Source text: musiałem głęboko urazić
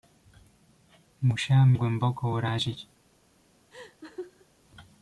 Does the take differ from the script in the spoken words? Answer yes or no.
no